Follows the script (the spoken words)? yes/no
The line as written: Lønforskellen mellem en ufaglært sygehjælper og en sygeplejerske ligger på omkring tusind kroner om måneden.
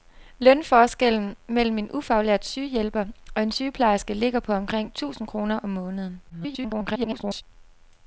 no